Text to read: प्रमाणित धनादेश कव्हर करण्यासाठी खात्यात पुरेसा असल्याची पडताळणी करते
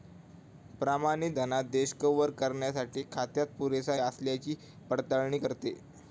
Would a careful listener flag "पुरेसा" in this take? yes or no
no